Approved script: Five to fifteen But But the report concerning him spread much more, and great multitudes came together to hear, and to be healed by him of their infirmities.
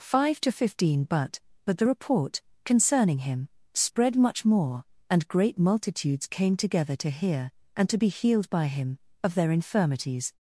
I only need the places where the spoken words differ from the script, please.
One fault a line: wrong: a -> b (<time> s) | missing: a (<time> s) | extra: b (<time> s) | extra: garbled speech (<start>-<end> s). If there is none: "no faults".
no faults